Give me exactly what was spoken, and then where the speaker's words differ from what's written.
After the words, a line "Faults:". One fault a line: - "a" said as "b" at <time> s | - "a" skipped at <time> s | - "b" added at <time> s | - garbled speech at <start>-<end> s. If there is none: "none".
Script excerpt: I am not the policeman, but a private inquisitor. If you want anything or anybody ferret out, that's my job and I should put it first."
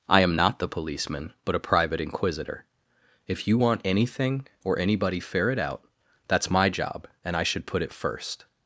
I am not the policeman, but a private inquisitor. If you want anything or anybody ferret out, that's my job and I should put it first."
Faults:
none